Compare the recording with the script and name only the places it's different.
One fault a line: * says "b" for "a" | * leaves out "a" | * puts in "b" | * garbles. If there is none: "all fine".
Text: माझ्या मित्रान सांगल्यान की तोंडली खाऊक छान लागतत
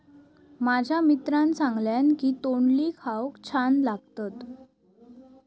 all fine